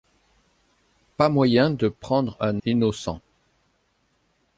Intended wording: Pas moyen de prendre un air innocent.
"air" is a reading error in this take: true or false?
true